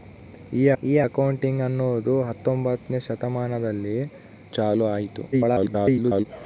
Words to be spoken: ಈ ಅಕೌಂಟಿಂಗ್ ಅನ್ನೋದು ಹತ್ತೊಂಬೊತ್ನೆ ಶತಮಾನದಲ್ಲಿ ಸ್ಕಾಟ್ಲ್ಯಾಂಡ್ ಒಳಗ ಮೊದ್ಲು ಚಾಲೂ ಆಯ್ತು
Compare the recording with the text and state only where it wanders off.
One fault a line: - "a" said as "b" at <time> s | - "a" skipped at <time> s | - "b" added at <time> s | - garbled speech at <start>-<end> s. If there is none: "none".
- "ಈ" added at 0.8 s
- "ಸ್ಕಾಟ್ಲ್ಯಾಂಡ್ ಒಳಗ ಮೊದ್ಲು" skipped at 4.0 s
- garbled speech at 5.3-6.3 s